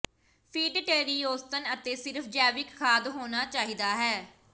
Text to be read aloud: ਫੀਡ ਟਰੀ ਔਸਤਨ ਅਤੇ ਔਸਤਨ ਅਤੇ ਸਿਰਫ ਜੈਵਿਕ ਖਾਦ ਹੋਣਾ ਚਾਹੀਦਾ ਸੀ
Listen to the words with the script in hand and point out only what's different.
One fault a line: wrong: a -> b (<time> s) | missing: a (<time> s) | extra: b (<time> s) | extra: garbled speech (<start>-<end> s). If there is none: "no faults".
missing: ਔਸਤਨ ਅਤੇ (1.9 s)
wrong: ਸੀ -> ਹੈ (4.0 s)